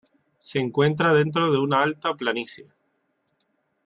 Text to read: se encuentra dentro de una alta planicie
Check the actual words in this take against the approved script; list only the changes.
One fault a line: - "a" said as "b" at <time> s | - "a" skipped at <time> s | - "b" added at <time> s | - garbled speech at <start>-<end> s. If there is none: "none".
none